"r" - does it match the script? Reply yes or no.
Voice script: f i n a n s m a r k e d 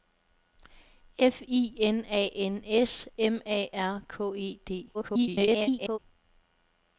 yes